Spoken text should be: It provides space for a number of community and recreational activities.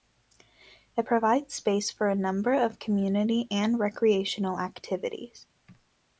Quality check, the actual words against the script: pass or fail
pass